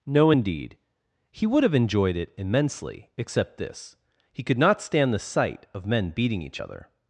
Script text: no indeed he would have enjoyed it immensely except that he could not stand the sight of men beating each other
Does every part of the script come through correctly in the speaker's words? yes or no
no